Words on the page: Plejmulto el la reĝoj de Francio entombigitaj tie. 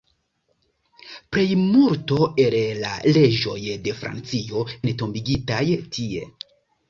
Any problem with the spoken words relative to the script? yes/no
no